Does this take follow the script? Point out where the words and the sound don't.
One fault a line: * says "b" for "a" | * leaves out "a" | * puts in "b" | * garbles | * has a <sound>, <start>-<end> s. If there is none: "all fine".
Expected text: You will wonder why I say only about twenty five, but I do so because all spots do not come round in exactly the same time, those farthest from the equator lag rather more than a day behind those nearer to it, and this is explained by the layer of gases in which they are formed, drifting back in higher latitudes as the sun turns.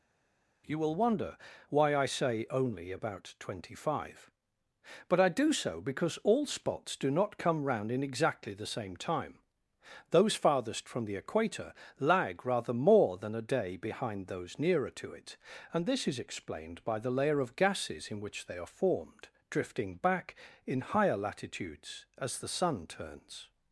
all fine